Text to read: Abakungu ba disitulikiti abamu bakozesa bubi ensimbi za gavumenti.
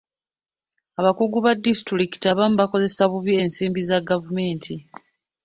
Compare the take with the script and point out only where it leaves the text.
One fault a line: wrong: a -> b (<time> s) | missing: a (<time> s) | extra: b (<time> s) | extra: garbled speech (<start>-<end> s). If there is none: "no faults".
no faults